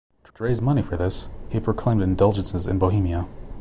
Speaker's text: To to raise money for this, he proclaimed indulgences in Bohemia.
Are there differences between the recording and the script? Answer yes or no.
no